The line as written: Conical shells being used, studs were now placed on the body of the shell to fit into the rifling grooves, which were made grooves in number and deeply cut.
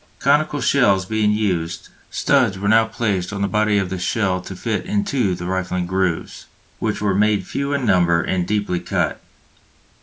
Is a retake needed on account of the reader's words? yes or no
yes